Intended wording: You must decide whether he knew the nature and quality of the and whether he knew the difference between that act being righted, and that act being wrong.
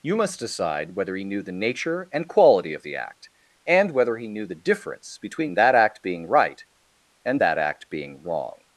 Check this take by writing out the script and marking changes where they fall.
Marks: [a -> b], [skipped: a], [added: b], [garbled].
You must decide whether he knew the nature and quality of the [added: act] and whether he knew the difference between that act being [righted, -> right] and that act being wrong.